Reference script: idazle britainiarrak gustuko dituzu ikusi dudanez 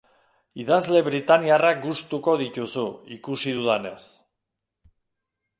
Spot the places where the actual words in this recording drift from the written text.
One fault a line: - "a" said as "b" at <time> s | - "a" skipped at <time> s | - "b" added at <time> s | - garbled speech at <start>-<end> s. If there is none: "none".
none